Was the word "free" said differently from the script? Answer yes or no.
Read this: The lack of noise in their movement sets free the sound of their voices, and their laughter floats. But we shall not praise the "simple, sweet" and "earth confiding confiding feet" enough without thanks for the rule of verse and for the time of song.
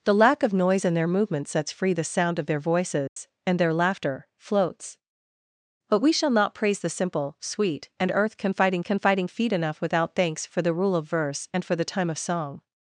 no